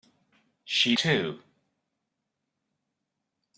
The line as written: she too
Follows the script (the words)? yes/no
yes